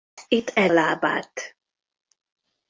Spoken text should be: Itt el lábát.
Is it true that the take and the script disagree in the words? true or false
false